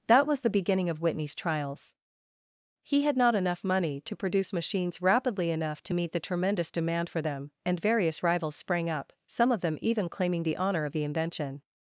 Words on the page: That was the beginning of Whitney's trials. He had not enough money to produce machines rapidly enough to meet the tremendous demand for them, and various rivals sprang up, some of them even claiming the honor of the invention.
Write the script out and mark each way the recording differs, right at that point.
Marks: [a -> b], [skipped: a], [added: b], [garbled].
That was the beginning of Whitney's trials. He had not enough money to produce machines rapidly enough to meet the tremendous demand for them, and various rivals sprang up, some of them even claiming the honor of the invention.